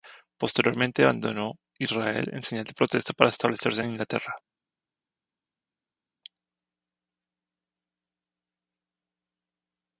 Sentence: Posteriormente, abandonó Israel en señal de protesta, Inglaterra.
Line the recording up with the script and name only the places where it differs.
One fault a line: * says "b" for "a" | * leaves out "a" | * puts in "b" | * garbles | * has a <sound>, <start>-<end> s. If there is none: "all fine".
* puts in "para establecerse en"